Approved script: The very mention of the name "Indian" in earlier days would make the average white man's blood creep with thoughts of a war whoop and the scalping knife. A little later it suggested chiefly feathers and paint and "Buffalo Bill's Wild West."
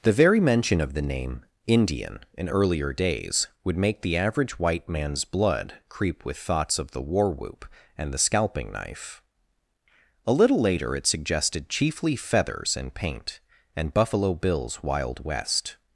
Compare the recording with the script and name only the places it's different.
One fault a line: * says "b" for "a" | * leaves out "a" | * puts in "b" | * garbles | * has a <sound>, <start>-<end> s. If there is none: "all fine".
* says "the" for "a"